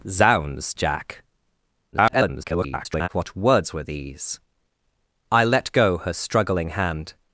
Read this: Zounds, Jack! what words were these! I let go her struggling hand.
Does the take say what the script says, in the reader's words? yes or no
no